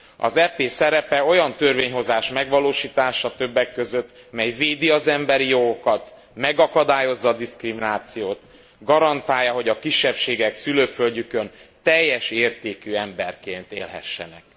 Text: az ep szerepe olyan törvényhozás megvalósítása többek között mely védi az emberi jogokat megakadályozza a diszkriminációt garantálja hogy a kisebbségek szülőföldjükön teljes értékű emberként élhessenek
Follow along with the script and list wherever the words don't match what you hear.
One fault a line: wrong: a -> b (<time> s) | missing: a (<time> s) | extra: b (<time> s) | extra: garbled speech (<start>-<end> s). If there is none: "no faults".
no faults